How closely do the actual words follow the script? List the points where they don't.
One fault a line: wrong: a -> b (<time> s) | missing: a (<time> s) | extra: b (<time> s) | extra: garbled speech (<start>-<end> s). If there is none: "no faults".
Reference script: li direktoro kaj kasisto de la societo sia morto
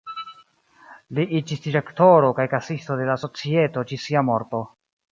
extra: iĝis (1.4 s)
extra: ĝis (3.9 s)